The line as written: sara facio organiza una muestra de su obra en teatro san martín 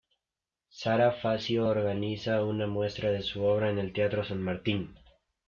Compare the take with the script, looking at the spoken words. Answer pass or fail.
fail